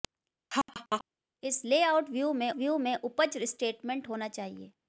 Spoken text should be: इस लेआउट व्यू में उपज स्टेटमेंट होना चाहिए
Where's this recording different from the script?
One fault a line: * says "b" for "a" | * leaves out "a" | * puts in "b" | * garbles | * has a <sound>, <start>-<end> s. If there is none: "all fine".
* has a laugh, 0.5-1.0 s
* puts in "व्यू में"